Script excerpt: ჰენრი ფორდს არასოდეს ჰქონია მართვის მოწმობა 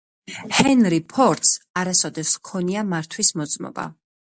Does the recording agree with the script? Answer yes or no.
yes